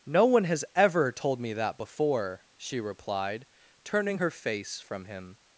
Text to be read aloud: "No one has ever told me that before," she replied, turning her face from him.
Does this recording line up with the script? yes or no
yes